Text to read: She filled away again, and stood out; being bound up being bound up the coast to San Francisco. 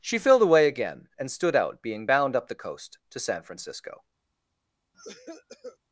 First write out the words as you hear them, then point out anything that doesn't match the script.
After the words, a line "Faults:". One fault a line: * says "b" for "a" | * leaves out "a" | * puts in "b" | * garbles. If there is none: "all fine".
She filled away again, and stood out; being bound up the coast to San Francisco.
Faults:
* leaves out "being bound up"